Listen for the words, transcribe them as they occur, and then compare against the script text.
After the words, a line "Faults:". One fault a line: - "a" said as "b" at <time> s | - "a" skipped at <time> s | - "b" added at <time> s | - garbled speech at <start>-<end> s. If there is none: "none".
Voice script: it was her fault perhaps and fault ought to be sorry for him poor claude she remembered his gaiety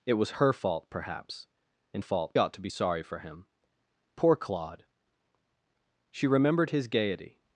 it was her fault perhaps and fault ought to be sorry for him poor claude she remembered his gaiety
Faults:
none